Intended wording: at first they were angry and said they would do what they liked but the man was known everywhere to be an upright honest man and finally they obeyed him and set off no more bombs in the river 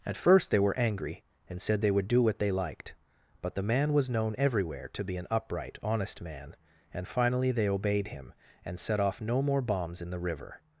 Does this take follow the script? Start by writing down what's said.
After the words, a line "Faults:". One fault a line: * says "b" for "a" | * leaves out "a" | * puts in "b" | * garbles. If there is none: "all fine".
at first they were angry and said they would do what they liked but the man was known everywhere to be an upright honest man and finally they obeyed him and set off no more bombs in the river
Faults:
all fine